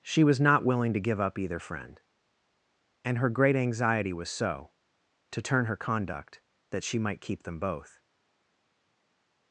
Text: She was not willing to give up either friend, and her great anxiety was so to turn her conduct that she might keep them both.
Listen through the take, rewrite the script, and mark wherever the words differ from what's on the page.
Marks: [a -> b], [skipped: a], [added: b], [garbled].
She was not willing to give up either friend, and her great anxiety was so to turn her conduct that she might keep them both.